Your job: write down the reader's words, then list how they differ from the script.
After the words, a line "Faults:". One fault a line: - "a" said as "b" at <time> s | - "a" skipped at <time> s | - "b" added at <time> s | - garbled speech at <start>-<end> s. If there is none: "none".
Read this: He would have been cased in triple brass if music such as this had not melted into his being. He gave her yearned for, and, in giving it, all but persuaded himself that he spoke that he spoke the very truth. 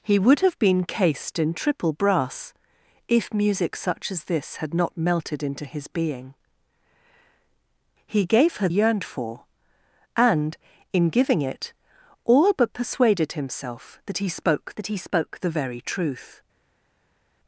He would have been cased in triple brass if music such as this had not melted into his being. He gave her yearned for, and, in giving it, all but persuaded himself that he spoke that he spoke the very truth.
Faults:
none